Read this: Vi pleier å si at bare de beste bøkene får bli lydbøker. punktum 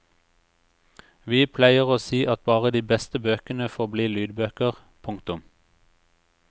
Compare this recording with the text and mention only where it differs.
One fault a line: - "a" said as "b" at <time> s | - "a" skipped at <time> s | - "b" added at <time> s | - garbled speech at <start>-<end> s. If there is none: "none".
none